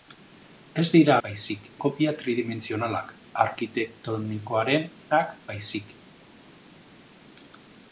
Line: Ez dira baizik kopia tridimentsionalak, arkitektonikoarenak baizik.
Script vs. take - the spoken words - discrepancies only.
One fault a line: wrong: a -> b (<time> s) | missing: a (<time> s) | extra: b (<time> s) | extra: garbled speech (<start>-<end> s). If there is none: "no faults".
no faults